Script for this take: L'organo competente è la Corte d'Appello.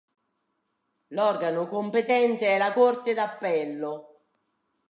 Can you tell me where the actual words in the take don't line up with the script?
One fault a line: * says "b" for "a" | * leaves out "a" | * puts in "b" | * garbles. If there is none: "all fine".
all fine